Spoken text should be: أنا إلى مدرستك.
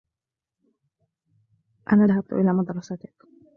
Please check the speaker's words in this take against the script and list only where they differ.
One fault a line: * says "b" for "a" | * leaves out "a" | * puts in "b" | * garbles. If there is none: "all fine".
* puts in "ذهبت"